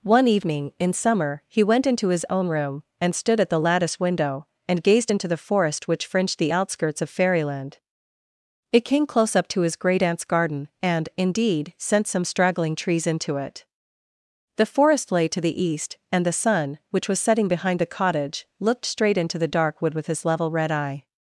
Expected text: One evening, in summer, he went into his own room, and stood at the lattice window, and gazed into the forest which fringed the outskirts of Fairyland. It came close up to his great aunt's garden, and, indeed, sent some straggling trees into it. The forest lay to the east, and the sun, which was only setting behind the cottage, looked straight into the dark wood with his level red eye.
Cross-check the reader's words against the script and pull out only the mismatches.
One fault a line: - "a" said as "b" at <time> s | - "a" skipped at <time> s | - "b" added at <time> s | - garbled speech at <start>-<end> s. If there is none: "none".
- "only" skipped at 17.2 s